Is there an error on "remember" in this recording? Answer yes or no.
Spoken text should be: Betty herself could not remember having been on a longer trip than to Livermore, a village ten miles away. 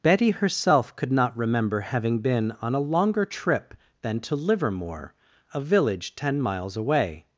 no